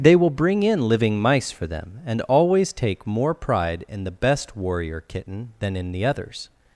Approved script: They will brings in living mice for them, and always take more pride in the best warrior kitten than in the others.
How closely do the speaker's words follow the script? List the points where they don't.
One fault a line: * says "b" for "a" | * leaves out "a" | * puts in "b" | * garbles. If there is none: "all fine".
* says "bring" for "brings"